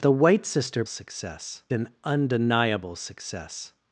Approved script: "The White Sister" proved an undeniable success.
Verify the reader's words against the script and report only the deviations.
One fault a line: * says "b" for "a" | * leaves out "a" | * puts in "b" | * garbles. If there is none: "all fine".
* says "success" for "proved"